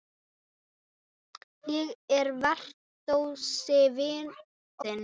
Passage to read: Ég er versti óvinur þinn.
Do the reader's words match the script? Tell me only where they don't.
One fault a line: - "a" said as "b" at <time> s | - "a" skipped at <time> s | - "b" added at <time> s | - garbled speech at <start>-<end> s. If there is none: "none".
- "óvinur" skipped at 3.2 s